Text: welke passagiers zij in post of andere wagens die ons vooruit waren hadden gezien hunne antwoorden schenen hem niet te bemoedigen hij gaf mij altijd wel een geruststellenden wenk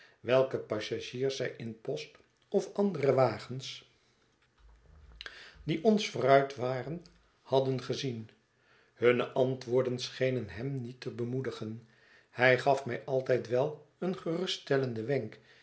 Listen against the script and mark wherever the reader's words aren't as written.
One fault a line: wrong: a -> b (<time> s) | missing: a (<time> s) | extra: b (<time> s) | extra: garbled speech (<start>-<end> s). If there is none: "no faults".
no faults